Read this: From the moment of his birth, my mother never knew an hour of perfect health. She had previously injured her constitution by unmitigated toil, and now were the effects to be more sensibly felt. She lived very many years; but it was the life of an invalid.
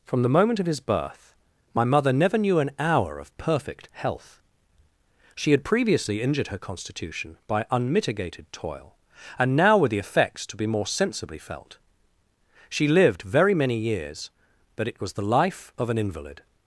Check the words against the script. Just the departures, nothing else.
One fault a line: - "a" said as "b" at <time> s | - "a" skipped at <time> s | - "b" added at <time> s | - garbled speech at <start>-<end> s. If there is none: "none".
none